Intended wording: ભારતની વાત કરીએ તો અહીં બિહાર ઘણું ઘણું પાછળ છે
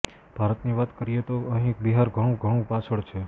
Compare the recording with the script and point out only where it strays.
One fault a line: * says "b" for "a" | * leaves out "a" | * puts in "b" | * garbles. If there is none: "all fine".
all fine